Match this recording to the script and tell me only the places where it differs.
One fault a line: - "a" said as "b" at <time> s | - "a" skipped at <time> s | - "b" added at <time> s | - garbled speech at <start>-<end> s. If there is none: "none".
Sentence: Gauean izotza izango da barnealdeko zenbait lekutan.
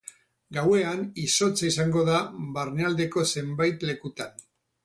none